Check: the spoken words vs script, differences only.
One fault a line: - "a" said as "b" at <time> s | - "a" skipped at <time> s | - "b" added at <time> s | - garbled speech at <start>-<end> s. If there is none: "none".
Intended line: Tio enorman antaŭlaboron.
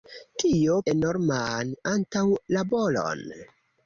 none